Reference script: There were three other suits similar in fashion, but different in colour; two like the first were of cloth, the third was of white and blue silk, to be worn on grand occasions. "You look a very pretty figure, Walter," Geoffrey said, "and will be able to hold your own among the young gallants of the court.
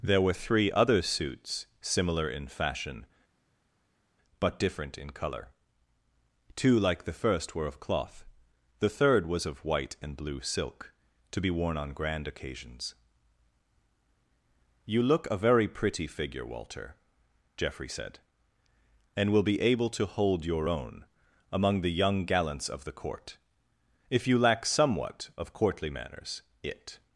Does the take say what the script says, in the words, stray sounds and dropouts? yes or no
no